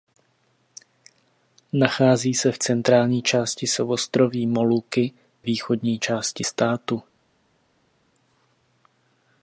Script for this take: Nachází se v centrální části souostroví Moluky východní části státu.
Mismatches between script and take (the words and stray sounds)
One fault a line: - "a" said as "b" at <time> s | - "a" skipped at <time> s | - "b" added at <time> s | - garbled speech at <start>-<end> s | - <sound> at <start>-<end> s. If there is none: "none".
none